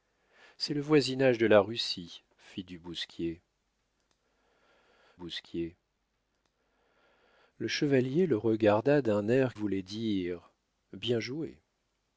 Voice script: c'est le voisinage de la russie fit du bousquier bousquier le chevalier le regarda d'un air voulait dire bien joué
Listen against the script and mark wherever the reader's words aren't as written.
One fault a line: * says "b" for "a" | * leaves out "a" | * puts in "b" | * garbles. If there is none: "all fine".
all fine